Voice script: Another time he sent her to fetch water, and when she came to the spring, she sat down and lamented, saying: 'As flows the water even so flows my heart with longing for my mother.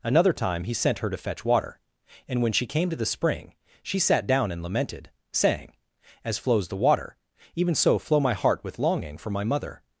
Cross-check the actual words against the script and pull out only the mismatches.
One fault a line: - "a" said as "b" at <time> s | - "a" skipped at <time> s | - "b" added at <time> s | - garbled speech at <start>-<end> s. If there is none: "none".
- "flows" said as "flow" at 8.0 s